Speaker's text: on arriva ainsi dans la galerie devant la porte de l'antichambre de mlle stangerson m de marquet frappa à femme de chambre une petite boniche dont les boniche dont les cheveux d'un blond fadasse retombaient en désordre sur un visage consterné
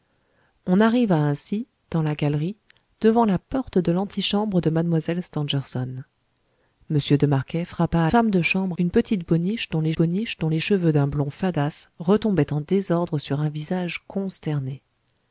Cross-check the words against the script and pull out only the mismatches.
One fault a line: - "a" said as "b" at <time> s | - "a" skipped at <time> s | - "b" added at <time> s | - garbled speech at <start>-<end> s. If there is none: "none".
none